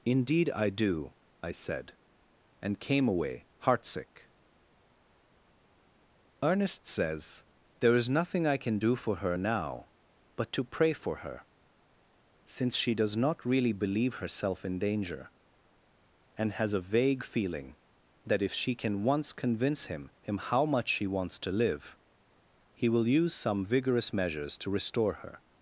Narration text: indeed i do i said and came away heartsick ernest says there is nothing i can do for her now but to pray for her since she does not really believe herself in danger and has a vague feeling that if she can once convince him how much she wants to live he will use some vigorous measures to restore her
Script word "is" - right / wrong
right